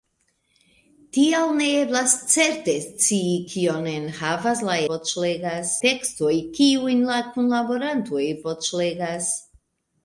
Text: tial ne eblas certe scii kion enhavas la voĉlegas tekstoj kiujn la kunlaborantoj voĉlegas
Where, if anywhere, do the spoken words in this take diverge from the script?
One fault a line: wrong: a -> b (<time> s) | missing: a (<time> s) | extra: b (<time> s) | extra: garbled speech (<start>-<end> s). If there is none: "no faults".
no faults